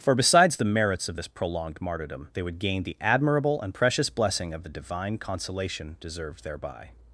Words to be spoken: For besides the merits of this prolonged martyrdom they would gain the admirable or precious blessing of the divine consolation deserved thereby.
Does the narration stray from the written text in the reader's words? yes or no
yes